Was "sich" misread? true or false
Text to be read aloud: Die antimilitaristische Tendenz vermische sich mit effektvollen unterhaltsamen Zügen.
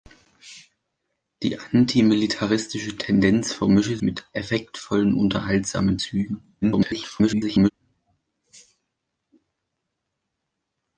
true